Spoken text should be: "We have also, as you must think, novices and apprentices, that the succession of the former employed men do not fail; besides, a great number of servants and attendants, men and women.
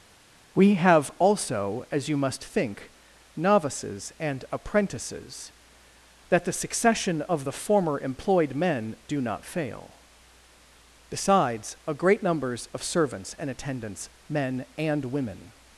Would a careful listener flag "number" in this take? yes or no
yes